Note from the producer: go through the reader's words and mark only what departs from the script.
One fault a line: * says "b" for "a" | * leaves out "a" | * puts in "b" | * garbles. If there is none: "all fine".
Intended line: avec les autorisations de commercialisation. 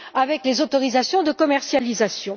all fine